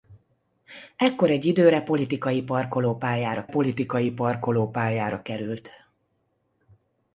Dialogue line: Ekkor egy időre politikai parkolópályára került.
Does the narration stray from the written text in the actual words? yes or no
yes